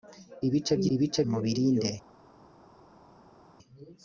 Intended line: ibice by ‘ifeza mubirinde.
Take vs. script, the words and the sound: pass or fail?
fail